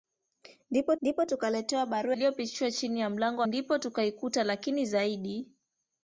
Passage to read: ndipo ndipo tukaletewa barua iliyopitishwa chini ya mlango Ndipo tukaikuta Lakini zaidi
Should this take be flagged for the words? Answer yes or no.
no